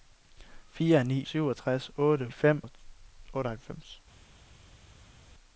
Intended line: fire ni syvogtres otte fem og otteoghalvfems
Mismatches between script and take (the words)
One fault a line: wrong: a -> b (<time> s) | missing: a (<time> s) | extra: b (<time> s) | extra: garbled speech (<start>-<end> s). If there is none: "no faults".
no faults